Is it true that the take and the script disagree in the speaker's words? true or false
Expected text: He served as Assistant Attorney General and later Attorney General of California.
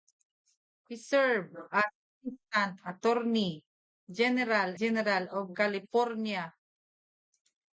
true